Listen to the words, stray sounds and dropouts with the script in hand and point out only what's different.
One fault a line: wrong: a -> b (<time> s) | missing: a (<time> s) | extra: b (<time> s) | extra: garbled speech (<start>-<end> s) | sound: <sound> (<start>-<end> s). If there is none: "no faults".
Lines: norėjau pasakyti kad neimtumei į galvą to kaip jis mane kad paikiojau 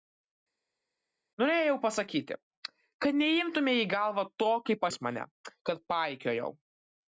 no faults